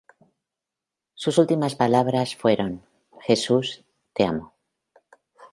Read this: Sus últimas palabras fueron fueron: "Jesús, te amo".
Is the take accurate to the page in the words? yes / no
no